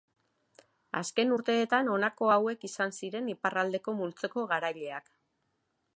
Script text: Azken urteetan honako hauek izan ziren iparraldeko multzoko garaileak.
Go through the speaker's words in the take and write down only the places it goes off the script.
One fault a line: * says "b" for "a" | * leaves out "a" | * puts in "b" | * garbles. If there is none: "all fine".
all fine